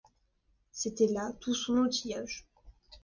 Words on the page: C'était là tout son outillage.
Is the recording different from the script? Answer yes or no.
no